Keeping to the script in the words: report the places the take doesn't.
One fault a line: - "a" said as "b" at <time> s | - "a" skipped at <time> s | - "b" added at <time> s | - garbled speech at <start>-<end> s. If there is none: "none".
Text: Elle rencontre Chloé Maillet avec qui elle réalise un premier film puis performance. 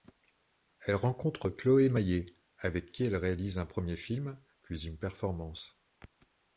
- "une" added at 4.9 s